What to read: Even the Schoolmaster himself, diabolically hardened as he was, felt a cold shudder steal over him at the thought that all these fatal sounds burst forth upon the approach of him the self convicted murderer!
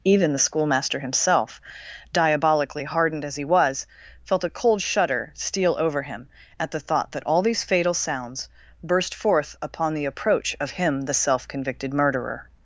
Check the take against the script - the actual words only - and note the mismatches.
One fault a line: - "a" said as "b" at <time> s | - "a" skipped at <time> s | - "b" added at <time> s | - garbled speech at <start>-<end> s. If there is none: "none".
none